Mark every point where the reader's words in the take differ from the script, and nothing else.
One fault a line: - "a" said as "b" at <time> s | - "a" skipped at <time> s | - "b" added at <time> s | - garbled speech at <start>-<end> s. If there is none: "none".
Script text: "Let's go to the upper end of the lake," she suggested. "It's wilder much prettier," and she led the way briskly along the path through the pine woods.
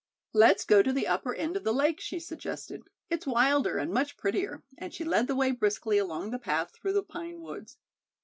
- "and" added at 3.8 s